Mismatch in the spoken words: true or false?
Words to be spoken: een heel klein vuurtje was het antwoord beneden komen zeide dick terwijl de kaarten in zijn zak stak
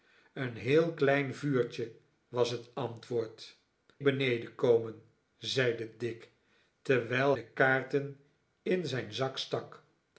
false